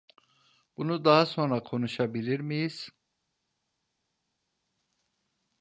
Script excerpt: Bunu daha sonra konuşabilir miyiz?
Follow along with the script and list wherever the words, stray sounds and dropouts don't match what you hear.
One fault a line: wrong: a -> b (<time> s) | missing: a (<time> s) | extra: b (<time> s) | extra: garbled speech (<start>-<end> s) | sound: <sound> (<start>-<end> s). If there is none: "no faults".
no faults